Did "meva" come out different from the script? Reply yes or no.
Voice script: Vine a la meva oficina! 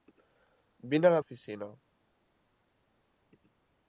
yes